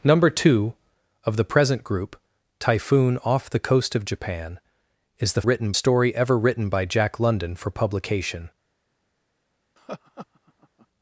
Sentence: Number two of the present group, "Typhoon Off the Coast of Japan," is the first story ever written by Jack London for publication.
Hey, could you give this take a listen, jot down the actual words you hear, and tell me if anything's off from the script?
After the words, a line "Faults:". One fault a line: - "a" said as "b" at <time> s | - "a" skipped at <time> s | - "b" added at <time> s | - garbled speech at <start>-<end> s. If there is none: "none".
Number two of the present group, "Typhoon Off the Coast of Japan," is the written story ever written by Jack London for publication.
Faults:
- "first" said as "written" at 5.4 s